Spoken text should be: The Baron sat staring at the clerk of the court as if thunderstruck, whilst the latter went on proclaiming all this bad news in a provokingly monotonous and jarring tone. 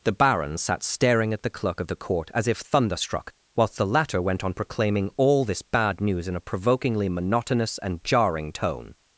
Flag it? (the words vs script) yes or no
no